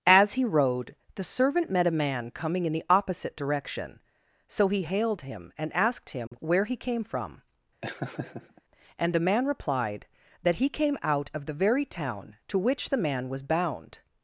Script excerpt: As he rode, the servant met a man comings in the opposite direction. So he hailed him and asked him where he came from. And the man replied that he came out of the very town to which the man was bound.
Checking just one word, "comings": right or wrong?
wrong